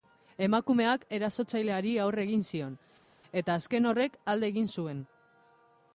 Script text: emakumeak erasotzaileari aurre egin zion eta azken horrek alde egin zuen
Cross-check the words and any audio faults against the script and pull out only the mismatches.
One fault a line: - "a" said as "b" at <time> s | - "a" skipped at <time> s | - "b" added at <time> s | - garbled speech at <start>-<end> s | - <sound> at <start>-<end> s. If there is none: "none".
none